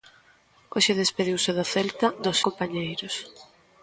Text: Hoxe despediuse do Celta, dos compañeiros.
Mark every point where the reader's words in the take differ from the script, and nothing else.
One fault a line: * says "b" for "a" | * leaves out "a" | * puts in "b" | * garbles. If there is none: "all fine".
all fine